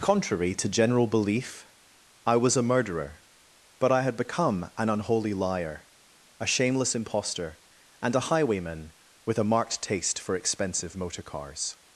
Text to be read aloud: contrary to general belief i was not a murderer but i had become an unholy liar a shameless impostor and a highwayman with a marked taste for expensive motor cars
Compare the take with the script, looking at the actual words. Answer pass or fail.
fail